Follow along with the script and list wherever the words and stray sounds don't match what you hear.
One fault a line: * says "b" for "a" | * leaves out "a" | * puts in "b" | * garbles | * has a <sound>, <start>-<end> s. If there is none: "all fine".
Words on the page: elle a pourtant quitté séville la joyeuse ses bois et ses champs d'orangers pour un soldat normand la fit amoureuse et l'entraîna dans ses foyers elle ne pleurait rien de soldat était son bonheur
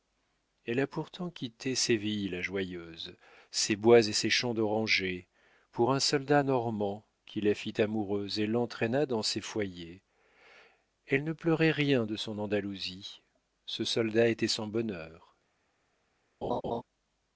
* puts in "qui"
* puts in "son andalousie ce"
* has a laugh, 16.4-16.8 s